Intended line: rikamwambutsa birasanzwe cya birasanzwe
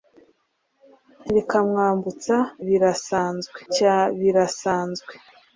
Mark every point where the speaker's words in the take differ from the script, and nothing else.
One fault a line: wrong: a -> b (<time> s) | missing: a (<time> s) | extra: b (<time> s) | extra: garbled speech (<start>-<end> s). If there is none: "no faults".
no faults